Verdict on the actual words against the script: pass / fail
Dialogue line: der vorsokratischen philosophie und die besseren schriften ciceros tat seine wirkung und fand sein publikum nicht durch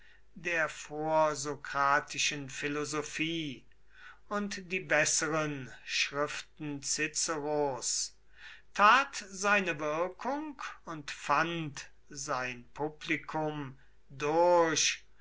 fail